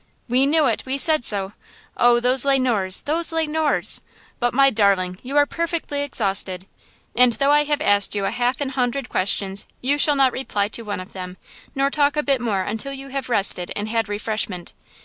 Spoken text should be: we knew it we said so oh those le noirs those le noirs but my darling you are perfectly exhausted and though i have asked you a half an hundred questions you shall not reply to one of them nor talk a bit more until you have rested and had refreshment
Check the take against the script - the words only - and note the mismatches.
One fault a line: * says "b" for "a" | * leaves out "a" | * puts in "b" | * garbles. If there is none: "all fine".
all fine